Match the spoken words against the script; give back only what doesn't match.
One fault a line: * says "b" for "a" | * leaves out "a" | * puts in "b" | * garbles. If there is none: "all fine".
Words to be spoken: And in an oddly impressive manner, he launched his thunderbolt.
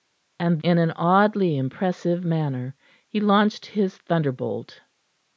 all fine